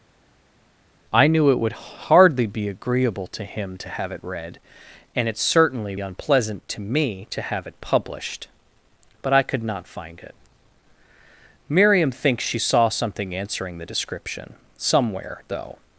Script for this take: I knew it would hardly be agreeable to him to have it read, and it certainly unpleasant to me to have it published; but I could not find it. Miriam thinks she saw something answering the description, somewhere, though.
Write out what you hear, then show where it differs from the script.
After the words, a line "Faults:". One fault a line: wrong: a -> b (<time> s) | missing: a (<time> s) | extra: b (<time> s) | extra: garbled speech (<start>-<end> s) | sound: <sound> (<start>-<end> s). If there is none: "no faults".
I knew it would hardly be agreeable to him to have it read, and it certainly unpleasant to me to have it published; but I could not find it. Miriam thinks she saw something answering the description, somewhere, though.
Faults:
no faults